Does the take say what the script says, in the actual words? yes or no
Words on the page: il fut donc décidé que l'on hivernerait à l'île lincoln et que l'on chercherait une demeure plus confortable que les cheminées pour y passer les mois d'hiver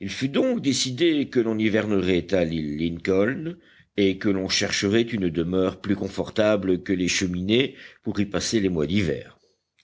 yes